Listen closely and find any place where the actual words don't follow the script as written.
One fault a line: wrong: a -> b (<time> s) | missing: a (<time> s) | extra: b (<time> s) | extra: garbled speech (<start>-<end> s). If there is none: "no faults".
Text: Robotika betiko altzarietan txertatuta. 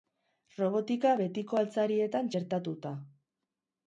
no faults